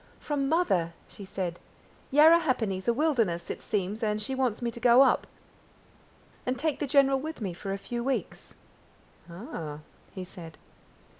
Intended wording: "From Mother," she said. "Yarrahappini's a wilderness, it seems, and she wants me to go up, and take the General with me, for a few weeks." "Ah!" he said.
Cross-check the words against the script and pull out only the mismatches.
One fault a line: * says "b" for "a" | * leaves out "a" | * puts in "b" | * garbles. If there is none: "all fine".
all fine